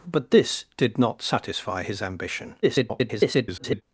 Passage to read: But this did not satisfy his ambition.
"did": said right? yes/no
yes